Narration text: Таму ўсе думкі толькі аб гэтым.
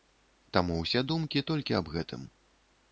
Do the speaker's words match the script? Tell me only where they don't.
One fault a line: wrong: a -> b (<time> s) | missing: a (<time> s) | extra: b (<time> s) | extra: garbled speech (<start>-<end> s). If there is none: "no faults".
no faults